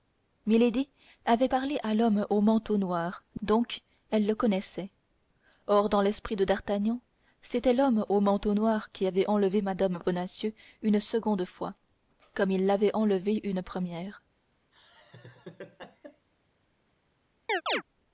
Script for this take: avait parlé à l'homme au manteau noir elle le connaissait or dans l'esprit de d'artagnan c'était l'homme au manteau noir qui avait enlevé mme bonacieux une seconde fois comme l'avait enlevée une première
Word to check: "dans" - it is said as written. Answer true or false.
true